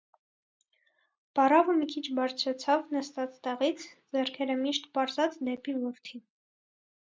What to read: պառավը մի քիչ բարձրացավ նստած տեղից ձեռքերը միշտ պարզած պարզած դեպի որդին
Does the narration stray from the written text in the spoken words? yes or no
yes